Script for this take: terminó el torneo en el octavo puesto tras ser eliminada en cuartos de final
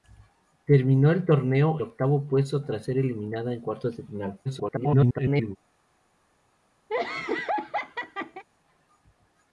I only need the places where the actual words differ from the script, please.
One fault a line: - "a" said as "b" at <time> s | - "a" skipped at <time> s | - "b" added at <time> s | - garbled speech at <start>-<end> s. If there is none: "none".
- "en el" skipped at 1.8 s
- garbled speech at 4.5-5.6 s